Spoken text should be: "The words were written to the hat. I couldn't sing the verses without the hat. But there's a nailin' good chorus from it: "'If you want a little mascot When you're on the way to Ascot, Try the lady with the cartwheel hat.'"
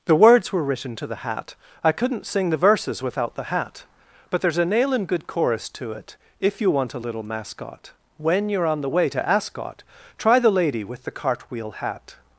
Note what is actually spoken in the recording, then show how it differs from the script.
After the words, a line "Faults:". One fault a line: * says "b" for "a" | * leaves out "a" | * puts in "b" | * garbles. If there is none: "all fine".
"The words were written to the hat. I couldn't sing the verses without the hat. But there's a nailin' good chorus to it: "'If you want a little mascot When you're on the way to Ascot, Try the lady with the cartwheel hat.'"
Faults:
* says "to" for "from"